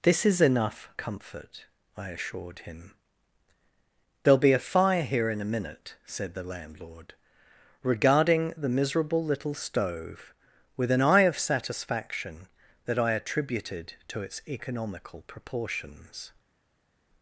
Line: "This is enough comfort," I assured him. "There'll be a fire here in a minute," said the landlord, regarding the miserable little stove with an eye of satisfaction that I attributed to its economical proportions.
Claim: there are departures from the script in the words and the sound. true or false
false